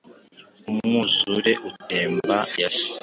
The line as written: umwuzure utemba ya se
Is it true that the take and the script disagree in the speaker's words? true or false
false